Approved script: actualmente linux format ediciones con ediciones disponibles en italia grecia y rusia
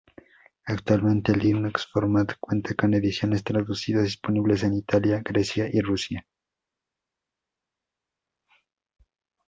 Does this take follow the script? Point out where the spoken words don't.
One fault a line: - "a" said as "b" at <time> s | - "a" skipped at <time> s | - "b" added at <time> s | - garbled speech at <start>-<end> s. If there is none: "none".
- "ediciones" said as "cuenta" at 2.4 s
- "traducidas" added at 3.4 s